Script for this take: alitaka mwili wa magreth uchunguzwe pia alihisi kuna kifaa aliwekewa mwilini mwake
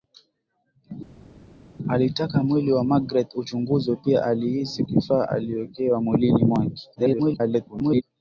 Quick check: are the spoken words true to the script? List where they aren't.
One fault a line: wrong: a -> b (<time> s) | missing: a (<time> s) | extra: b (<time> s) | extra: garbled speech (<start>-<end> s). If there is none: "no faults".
missing: kuna (4.8 s)
extra: garbled speech (7.0-8.0 s)